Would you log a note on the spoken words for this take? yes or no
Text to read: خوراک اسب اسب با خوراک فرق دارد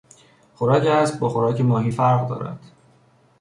yes